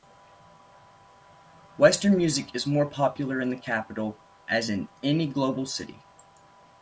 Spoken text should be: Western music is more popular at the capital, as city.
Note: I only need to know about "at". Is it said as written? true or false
false